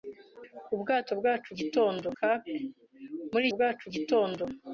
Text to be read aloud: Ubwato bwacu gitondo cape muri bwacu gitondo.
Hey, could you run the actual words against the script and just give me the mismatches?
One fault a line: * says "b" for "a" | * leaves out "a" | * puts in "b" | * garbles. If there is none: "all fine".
all fine